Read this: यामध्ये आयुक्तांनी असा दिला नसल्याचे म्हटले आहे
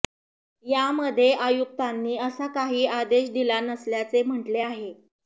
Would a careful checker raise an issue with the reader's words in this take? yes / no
yes